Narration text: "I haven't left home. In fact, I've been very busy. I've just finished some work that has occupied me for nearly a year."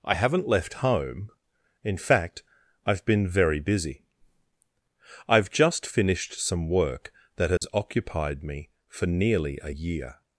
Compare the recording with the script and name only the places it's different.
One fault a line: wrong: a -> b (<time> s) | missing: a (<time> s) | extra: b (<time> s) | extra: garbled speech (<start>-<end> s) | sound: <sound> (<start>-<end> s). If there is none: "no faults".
sound: dropout (7.6-7.6 s)